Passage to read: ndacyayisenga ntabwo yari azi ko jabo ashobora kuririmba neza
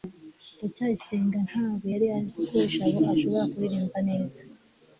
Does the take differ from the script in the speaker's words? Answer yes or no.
no